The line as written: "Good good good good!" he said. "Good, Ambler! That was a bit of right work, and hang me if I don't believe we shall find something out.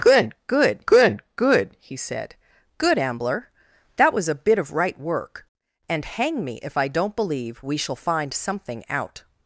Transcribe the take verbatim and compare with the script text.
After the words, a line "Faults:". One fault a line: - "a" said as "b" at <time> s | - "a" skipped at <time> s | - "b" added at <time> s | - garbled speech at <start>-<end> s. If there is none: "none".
"Good good good good!" he said. "Good, Ambler! That was a bit of right work, and hang me if I don't believe we shall find something out.
Faults:
none